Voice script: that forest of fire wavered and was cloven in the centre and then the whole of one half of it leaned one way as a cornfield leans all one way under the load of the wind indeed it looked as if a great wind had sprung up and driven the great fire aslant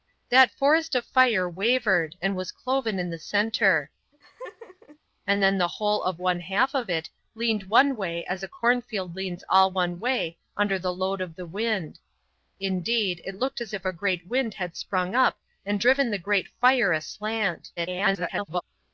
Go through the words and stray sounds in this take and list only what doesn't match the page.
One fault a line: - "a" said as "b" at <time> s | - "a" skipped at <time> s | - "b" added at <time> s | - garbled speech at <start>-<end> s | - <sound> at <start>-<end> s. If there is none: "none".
- laugh at 4.1-5.0 s
- garbled speech at 17.8-18.6 s